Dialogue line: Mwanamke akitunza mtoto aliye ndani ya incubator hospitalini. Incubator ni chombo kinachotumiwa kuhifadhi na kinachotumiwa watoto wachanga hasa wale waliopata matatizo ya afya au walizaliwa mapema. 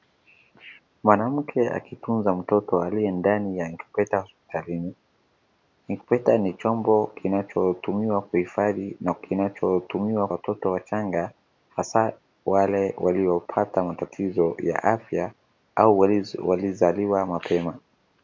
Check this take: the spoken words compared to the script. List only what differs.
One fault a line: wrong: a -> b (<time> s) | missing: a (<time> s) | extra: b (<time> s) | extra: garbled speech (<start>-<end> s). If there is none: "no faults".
no faults